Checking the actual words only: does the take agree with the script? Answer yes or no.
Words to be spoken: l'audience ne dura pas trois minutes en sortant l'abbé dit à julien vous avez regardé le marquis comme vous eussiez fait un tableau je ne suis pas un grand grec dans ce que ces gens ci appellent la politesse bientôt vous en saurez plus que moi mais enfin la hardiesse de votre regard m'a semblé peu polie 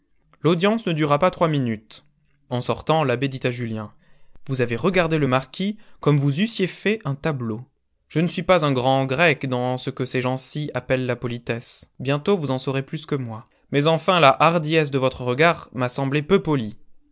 yes